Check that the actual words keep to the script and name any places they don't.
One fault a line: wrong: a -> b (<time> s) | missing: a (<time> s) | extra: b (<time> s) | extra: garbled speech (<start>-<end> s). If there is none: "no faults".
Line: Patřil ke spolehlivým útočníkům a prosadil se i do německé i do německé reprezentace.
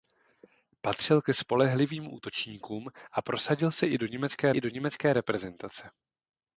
no faults